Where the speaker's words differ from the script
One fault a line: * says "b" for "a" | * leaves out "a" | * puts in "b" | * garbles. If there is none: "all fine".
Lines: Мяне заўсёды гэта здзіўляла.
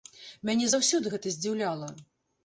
all fine